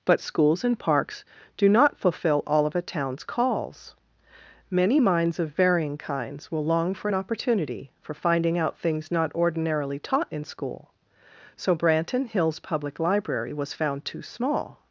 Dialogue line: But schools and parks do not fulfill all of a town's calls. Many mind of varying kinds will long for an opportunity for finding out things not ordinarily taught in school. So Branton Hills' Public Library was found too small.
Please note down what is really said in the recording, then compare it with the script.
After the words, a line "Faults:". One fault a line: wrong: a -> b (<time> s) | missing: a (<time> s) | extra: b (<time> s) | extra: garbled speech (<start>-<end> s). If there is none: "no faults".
But schools and parks do not fulfill all of a town's calls. Many minds of varying kinds will long for an opportunity for finding out things not ordinarily taught in school. So Branton Hills' Public Library was found too small.
Faults:
wrong: mind -> minds (5.0 s)